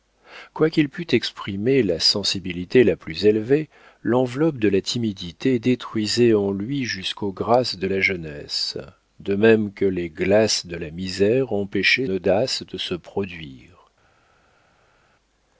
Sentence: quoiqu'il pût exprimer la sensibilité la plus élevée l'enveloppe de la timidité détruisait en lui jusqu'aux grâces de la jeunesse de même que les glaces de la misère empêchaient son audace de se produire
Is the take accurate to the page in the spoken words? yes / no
no